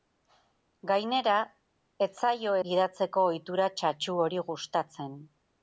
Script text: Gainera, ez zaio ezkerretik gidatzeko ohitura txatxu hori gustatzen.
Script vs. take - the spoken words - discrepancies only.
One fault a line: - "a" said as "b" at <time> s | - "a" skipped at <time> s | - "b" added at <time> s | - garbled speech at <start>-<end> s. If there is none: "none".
- "ezkerretik" skipped at 2.5 s